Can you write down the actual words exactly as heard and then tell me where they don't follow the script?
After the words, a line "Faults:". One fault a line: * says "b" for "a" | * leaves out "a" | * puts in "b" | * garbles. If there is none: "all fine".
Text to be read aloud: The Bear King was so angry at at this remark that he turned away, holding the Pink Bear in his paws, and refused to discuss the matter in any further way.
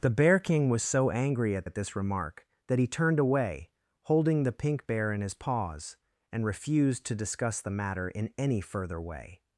The Bear King was so angry at at this remark that he turned away, holding the Pink Bear in his paws, and refused to discuss the matter in any further way.
Faults:
all fine